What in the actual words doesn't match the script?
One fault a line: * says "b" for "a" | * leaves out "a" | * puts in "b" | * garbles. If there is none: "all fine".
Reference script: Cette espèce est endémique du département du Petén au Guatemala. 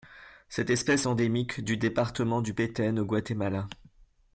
* leaves out "est"